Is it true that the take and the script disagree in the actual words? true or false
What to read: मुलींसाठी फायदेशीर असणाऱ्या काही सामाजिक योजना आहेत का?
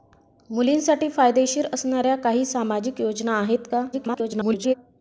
true